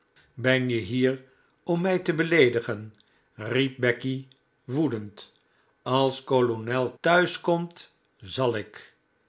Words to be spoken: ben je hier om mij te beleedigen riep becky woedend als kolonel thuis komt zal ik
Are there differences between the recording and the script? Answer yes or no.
no